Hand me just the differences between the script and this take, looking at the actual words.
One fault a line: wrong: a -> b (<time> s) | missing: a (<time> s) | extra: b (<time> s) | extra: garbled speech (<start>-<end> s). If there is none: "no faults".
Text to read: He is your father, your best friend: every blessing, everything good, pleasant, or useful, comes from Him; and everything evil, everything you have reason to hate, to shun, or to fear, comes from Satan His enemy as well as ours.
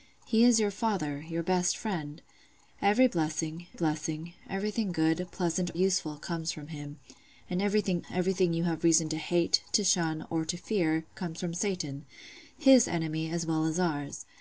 extra: blessing (3.7 s)
missing: or (5.7 s)
missing: evil (8.0 s)